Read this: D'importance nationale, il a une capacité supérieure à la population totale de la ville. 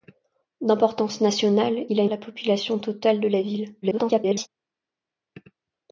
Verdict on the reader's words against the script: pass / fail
fail